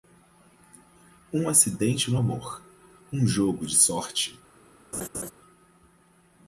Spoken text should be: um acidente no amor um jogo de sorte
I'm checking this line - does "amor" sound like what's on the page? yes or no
yes